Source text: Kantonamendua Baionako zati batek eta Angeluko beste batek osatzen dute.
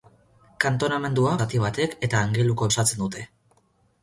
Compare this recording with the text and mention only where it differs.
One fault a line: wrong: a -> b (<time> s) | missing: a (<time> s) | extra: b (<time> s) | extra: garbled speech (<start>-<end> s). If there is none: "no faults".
missing: Baionako (1.3 s)
missing: beste batek (2.7 s)